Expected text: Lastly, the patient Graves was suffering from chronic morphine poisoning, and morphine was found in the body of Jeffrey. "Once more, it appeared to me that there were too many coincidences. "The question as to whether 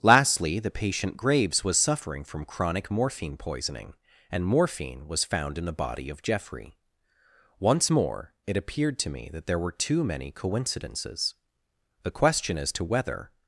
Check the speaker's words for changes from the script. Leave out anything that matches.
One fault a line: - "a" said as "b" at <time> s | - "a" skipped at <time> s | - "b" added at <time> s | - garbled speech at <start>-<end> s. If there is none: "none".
none